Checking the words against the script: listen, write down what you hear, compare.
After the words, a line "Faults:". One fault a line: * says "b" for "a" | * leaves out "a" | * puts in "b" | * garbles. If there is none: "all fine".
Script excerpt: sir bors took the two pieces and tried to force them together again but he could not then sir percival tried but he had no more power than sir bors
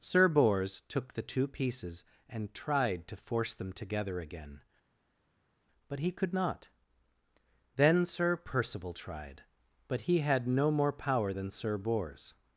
sir bors took the two pieces and tried to force them together again but he could not then sir percival tried but he had no more power than sir bors
Faults:
all fine